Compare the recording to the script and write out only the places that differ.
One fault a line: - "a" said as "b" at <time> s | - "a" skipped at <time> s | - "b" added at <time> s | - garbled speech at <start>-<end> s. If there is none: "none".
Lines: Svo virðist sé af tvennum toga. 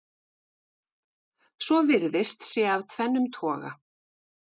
none